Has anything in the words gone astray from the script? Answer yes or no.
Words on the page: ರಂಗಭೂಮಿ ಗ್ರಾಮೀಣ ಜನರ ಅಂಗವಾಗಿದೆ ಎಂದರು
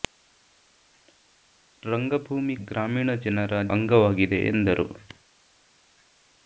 no